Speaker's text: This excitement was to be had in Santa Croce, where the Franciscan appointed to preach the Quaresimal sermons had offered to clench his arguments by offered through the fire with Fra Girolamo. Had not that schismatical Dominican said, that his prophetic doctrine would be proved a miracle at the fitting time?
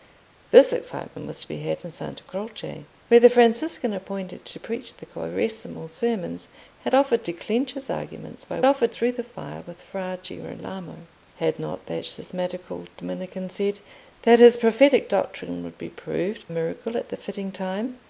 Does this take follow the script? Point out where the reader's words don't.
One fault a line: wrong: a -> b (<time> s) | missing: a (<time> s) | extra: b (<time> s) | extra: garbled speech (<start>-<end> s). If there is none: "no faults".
no faults